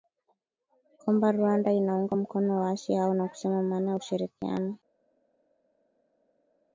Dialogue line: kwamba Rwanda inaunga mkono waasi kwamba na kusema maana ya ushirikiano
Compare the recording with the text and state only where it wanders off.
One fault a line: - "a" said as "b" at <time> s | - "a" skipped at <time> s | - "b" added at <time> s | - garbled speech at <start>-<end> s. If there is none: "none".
- "kwamba" said as "hao" at 2.9 s